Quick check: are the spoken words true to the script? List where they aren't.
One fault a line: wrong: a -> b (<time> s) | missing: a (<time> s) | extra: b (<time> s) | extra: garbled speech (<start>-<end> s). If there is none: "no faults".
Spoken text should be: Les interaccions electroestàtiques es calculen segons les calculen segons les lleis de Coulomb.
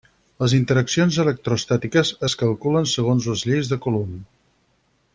missing: calculen segons les (3.5 s)